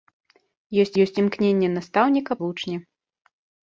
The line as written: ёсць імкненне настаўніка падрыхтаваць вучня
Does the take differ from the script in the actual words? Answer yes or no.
yes